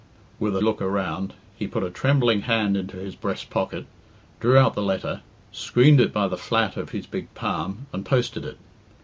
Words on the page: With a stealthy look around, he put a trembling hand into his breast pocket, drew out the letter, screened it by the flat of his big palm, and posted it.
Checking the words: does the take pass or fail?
fail